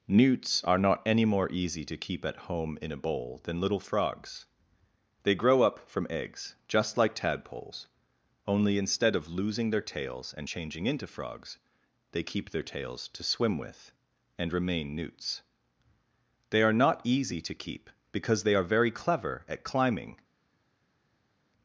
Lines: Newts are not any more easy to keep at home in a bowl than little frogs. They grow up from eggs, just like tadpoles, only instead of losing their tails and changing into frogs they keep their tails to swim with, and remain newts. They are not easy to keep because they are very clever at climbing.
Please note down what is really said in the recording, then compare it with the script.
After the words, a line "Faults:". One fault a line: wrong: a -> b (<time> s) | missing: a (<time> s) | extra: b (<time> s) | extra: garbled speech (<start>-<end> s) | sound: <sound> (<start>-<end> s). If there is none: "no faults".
Newts are not any more easy to keep at home in a bowl than little frogs. They grow up from eggs, just like tadpoles, only instead of losing their tails and changing into frogs they keep their tails to swim with, and remain newts. They are not easy to keep because they are very clever at climbing.
Faults:
no faults